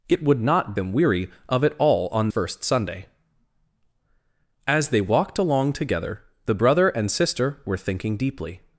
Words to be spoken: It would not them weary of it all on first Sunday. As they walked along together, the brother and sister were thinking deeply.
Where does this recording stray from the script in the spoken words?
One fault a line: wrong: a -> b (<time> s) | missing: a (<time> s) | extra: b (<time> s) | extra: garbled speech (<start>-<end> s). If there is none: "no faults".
no faults